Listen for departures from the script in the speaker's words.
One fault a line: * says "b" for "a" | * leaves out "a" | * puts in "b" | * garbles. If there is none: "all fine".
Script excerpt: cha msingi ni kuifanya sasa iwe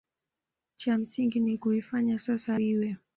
all fine